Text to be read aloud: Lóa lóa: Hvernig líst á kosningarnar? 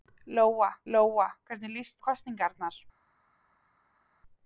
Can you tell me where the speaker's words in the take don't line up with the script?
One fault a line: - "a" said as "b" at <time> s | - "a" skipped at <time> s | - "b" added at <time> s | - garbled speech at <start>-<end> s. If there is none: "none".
none